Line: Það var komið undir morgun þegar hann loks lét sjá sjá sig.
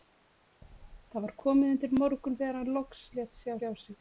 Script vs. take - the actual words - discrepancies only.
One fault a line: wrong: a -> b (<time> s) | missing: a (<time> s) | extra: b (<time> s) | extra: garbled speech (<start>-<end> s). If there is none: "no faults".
no faults